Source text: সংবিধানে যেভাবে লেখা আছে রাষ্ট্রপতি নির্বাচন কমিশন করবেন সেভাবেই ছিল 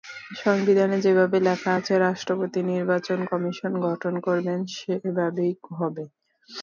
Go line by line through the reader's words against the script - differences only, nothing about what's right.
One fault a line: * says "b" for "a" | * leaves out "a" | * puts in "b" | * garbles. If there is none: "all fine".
* puts in "গঠন"
* says "হবে" for "ছিল"